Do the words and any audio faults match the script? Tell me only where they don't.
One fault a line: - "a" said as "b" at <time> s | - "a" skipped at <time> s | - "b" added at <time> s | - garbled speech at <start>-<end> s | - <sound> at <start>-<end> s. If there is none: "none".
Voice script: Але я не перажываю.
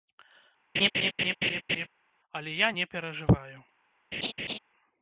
- laugh at 0.7-1.9 s
- laugh at 4.1-4.6 s